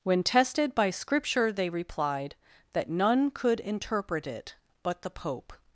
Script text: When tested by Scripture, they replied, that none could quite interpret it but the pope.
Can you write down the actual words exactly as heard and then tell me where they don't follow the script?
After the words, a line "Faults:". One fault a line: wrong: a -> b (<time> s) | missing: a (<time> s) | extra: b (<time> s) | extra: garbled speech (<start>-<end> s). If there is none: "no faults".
When tested by Scripture, they replied, that none could interpret it but the pope.
Faults:
missing: quite (3.6 s)